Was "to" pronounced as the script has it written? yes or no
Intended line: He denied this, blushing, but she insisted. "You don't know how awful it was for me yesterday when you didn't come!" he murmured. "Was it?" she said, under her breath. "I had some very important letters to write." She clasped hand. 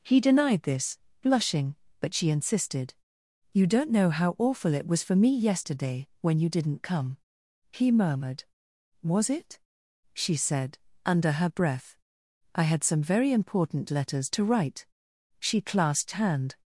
yes